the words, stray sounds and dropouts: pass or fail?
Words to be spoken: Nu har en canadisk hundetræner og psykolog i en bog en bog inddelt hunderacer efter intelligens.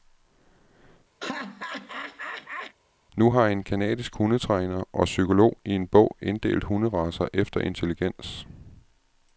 fail